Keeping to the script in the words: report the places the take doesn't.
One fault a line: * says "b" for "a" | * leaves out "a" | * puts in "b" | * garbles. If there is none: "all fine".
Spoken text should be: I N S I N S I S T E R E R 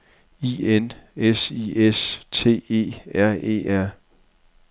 * leaves out "N S I"